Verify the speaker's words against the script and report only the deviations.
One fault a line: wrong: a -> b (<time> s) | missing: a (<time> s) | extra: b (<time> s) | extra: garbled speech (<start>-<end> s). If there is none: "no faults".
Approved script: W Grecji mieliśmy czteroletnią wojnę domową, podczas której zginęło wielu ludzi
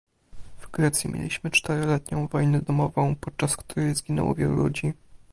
no faults